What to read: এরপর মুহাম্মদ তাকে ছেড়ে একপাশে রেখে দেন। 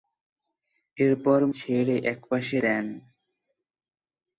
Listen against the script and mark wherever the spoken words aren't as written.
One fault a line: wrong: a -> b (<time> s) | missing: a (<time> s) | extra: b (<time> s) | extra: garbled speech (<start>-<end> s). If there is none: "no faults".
missing: মুহাম্মদ তাকে (1.4 s)
missing: রেখে (2.6 s)